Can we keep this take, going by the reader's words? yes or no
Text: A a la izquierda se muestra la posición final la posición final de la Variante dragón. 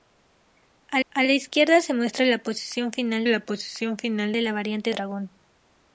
yes